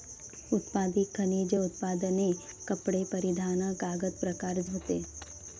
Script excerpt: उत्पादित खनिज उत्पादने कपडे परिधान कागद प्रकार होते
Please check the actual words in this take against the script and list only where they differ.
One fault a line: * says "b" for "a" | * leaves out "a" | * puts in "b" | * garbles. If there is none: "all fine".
all fine